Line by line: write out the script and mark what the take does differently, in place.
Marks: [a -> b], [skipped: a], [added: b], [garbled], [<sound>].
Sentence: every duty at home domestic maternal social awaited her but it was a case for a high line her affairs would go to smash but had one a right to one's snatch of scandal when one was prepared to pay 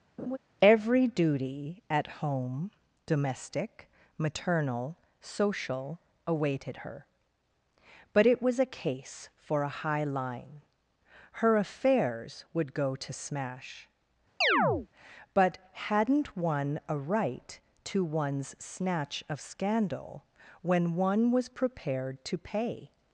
[laugh] every duty at home domestic maternal social awaited her but it was a case for a high line her affairs would go to smash [chirp] but [had -> hadn't] one a right to one's snatch of scandal when one was prepared to pay